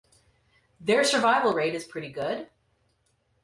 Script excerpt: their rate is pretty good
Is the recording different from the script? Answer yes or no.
yes